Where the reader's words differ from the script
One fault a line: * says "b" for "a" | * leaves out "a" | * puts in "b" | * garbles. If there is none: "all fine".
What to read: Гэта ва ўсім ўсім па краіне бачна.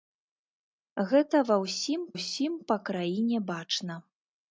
all fine